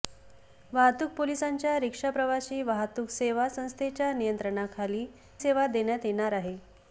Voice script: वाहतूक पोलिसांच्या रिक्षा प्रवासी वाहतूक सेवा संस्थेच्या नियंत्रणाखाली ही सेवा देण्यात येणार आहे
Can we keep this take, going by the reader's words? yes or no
no